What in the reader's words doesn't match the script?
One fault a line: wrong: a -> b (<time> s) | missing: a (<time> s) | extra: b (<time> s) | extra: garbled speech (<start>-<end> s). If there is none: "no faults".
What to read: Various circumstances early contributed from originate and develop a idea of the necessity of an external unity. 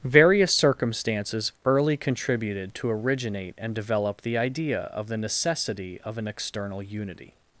wrong: from -> to (2.8 s)
wrong: a -> the (4.2 s)